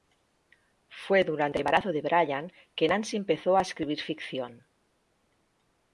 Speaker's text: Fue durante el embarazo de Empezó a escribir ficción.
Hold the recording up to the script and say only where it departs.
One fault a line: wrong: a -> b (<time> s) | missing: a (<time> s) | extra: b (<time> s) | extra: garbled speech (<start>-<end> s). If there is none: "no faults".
extra: Brian que Nancy (2.0 s)